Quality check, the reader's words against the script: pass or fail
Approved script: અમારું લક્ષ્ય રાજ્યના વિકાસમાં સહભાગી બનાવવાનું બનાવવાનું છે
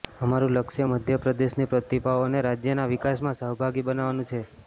fail